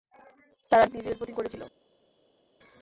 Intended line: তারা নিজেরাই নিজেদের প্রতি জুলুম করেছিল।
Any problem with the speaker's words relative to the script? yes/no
yes